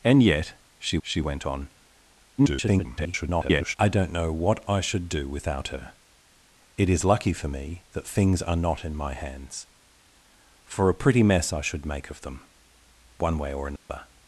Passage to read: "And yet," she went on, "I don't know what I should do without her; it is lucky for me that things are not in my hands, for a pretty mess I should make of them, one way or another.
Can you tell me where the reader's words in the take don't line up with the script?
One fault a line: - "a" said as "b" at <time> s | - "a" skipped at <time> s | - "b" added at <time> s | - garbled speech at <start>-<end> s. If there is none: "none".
- "she" added at 1.0 s
- garbled speech at 2.4-3.8 s